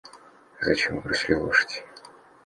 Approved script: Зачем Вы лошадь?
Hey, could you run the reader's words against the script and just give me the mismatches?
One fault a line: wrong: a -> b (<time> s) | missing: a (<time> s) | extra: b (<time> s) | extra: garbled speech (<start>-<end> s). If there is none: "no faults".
extra: бросили (1.0 s)